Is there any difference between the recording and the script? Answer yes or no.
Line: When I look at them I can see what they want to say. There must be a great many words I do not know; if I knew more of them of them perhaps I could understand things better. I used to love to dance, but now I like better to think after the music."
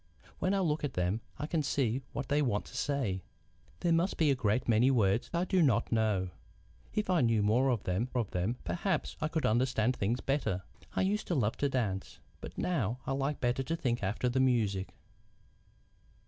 no